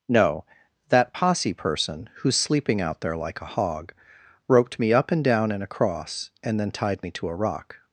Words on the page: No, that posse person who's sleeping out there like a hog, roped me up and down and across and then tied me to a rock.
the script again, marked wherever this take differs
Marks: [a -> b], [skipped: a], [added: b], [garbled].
No, that posse person who's sleeping out there like a hog, roped me up and down and across and then tied me to a rock.